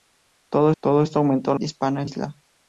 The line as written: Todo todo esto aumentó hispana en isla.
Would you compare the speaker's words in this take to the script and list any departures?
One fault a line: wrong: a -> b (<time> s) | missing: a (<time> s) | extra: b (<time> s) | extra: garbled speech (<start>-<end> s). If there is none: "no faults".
no faults